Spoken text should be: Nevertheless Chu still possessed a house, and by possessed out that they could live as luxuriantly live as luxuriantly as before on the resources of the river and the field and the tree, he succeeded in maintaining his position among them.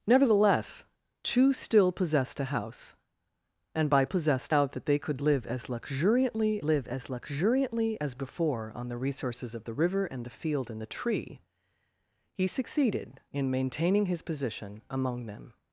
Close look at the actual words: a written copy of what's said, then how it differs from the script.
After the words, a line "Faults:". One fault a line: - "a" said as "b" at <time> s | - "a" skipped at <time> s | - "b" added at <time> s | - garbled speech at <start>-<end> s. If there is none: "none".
Nevertheless Chu still possessed a house, and by possessed out that they could live as luxuriantly live as luxuriantly as before on the resources of the river and the field and the tree, he succeeded in maintaining his position among them.
Faults:
none